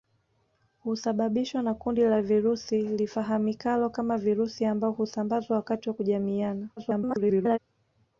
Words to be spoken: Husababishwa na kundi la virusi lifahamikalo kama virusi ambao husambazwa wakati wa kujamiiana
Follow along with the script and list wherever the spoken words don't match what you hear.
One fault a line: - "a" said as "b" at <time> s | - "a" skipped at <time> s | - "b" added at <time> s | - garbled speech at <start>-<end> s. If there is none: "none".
- garbled speech at 6.8-7.6 s